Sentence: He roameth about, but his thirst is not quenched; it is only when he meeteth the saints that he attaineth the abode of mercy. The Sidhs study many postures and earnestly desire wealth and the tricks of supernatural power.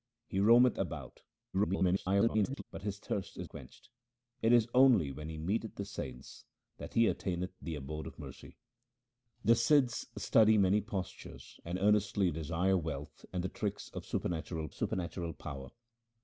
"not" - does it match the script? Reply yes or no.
no